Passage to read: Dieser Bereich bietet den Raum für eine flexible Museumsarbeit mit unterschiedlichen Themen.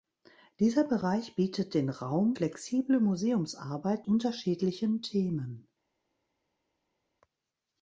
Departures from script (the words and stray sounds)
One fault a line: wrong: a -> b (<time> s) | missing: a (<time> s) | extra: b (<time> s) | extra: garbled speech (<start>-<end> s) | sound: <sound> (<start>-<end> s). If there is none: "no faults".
missing: für eine (2.4 s)
missing: mit (4.1 s)